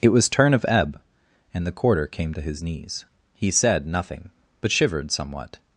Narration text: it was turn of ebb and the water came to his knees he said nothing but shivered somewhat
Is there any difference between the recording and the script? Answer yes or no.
yes